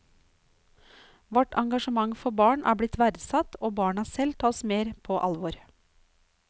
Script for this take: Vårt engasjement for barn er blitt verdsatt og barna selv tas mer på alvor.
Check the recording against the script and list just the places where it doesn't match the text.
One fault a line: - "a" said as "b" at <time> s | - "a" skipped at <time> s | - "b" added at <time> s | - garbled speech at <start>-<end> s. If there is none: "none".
none